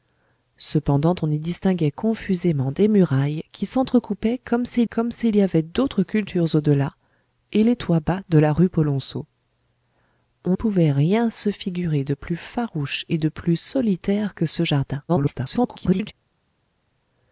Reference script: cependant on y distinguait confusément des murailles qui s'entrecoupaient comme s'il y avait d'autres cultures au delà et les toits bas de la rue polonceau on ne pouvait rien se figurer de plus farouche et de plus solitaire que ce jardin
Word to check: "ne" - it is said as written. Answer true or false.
false